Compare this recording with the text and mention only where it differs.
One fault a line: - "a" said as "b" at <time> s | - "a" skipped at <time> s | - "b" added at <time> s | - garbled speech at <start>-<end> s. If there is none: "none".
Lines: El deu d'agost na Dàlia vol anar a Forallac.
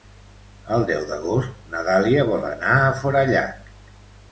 none